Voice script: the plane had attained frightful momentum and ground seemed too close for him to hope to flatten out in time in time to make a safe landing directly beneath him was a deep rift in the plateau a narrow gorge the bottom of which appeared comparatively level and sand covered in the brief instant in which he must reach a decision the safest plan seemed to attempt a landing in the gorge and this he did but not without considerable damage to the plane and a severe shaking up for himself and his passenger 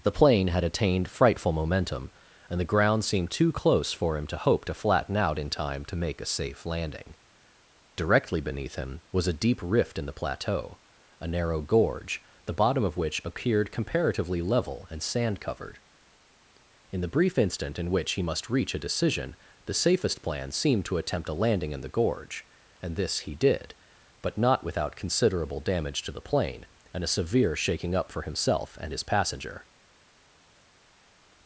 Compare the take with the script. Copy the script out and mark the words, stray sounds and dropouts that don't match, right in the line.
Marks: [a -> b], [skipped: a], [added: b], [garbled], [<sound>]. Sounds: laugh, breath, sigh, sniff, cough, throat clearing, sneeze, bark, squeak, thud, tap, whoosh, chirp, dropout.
the plane had attained frightful momentum and [added: the] ground seemed too close for him to hope to flatten out in time [skipped: in time] to make a safe landing directly beneath him was a deep rift in the plateau a narrow gorge the bottom of which appeared comparatively level and sand covered in the brief instant in which he must reach a decision the safest plan seemed to attempt a landing in the gorge and this he did but not without considerable damage to the plane and a severe shaking up for himself and his passenger